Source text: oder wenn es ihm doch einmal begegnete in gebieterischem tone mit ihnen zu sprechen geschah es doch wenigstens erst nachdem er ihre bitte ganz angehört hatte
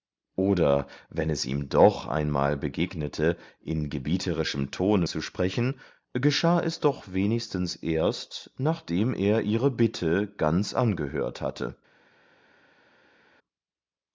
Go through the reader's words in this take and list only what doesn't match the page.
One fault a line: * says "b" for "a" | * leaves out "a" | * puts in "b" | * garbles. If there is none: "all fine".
* leaves out "mit ihnen"